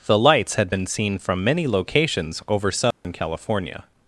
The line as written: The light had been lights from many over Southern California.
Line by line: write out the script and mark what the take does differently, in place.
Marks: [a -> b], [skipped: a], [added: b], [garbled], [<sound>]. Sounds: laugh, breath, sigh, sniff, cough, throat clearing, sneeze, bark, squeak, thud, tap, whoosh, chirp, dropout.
The [light -> lights] had been [lights -> seen] from many [added: locations] over Southern [dropout] California.